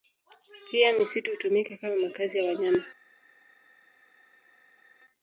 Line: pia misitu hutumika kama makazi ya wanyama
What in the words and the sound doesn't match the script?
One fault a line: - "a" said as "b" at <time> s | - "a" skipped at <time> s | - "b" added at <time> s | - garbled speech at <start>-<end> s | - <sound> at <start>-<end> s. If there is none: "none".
none